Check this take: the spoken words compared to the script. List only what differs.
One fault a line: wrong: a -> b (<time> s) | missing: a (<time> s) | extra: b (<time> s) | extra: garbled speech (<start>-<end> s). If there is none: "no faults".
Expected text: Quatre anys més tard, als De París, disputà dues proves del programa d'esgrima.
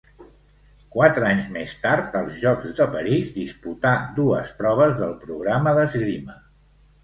extra: Jocs (2.5 s)